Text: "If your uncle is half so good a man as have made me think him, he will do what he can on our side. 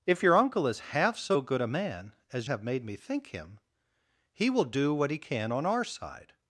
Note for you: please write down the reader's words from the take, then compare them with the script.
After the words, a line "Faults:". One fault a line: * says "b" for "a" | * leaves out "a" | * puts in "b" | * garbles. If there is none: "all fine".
"If your uncle is half so good a man as have made me think him, he will do what he can on our side.
Faults:
all fine